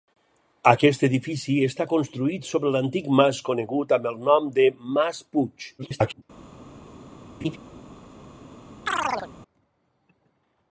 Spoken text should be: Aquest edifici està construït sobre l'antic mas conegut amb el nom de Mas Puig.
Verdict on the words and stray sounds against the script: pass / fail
fail